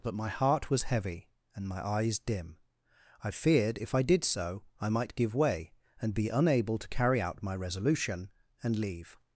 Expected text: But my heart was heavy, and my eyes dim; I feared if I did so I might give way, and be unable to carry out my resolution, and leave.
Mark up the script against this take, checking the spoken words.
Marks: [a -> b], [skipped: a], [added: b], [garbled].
But my heart was heavy, and my eyes dim; I feared if I did so I might give way, and be unable to carry out my resolution, and leave.